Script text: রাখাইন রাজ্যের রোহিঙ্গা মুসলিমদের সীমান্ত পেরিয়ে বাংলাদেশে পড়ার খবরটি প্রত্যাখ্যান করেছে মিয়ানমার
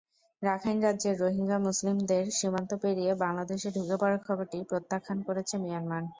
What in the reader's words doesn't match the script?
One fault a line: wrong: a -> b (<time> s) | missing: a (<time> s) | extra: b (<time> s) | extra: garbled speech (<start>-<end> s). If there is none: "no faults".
extra: ঢুকে (3.8 s)